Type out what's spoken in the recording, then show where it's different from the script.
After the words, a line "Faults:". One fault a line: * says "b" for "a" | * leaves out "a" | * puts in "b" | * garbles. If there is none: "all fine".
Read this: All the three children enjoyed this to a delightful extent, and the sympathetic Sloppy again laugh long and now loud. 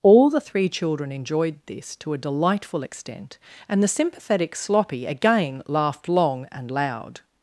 All the three children enjoyed this to a delightful extent, and the sympathetic Sloppy again laughed long and loud.
Faults:
* says "laughed" for "laugh"
* leaves out "now"